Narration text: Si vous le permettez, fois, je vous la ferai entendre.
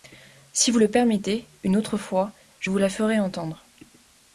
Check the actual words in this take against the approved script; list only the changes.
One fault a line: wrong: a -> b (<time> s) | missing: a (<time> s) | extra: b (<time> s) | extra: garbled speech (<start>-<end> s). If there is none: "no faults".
extra: une autre (1.6 s)